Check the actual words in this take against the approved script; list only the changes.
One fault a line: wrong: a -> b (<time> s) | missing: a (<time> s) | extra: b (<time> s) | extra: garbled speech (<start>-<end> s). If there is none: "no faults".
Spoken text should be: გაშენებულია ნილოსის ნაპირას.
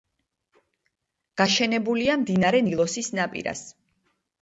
extra: მდინარე (2.2 s)